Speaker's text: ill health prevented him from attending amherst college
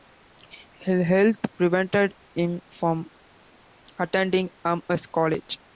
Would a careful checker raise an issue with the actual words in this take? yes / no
no